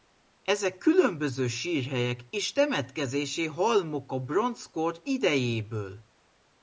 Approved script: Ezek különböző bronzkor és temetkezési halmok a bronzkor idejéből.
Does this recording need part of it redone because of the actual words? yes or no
yes